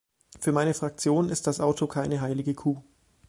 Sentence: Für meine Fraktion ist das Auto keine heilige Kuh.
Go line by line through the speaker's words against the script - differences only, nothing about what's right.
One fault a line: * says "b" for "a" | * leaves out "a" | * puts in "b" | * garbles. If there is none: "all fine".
all fine